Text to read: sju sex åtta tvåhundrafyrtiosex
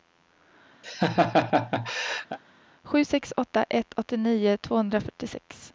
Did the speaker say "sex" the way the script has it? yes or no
yes